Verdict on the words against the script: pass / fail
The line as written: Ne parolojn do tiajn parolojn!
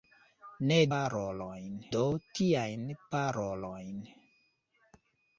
pass